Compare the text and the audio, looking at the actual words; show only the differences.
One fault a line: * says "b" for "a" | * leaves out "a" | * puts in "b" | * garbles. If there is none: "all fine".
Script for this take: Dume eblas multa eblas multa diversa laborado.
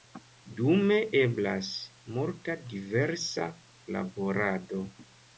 * leaves out "eblas multa"